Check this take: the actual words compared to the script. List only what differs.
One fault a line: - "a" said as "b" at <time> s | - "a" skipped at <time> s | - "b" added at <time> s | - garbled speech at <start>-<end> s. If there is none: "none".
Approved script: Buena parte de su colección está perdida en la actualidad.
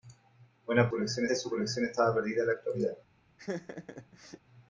- "parte" said as "colección" at 0.9 s